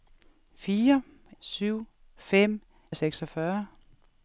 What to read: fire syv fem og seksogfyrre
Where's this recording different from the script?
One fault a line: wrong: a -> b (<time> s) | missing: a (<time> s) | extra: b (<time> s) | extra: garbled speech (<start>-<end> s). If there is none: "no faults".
no faults